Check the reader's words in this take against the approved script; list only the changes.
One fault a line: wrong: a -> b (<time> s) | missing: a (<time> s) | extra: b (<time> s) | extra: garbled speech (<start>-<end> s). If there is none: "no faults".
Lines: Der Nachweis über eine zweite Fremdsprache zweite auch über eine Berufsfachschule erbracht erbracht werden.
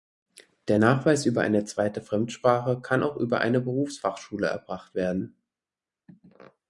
wrong: zweite -> kann (2.8 s)
missing: erbracht (5.0 s)